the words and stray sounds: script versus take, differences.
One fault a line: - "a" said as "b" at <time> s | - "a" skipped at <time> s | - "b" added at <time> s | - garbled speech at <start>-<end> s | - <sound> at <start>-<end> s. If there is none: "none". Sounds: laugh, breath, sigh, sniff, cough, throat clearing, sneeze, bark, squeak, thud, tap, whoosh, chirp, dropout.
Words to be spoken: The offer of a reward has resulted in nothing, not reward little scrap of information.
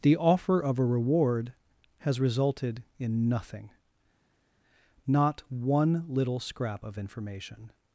- "reward" said as "one" at 5.5 s